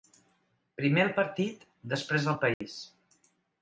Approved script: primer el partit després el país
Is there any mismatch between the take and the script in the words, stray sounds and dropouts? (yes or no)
yes